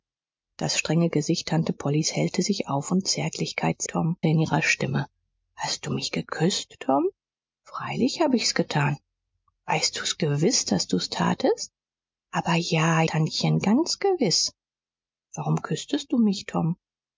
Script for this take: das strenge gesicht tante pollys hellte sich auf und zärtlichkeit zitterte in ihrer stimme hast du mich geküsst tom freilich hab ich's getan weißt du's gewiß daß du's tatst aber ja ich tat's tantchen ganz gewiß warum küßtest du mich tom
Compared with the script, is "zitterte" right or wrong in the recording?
wrong